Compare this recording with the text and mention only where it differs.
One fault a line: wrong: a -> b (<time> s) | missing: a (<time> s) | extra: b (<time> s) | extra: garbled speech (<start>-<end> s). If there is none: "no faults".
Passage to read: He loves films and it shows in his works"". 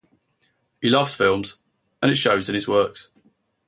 no faults